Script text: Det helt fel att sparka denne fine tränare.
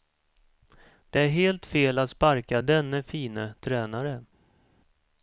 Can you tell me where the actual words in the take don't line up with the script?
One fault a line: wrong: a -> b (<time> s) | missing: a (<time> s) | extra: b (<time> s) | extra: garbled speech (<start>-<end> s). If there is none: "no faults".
extra: är (1.2 s)